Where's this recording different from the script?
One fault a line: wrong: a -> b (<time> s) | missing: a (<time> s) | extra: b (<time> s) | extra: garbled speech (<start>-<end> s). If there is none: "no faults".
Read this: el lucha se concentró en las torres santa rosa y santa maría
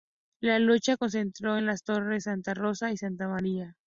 wrong: el -> la (0.4 s)